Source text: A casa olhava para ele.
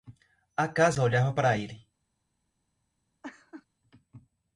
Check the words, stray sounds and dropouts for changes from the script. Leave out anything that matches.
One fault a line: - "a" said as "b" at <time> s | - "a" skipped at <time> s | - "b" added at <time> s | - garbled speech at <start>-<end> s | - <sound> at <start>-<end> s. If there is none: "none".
- laugh at 3.2-3.7 s